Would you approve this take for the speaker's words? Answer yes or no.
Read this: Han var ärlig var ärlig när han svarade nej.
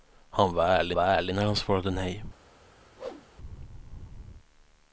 yes